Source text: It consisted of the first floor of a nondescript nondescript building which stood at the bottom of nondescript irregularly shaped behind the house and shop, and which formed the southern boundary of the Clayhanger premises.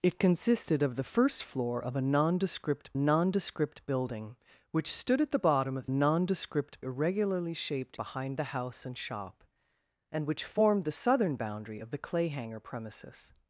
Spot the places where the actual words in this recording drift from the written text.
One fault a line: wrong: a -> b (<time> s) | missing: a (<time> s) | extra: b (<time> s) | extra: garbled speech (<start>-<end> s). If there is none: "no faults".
no faults